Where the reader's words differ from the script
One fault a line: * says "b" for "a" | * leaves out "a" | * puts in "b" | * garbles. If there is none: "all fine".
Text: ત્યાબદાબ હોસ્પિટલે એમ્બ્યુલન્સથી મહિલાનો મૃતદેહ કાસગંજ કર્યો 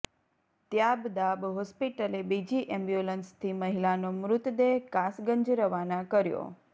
* puts in "બીજી"
* puts in "રવાના"